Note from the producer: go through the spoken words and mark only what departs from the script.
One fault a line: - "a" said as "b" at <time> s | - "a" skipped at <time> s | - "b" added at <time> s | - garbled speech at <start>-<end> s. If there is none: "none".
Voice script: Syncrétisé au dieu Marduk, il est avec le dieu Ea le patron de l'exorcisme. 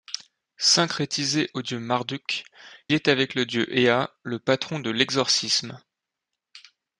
- "il" skipped at 2.4 s